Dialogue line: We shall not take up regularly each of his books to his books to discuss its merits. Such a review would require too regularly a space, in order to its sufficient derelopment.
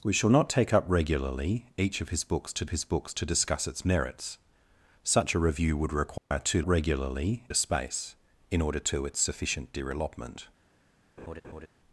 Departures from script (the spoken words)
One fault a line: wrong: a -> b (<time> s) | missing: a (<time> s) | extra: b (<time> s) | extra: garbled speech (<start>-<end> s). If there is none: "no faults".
no faults